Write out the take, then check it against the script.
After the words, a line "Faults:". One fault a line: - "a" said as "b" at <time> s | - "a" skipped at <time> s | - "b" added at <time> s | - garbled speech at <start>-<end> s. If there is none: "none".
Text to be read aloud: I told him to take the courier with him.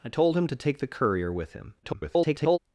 I told him to take the courier with him. [garbled]
Faults:
- garbled speech at 1.8-2.6 s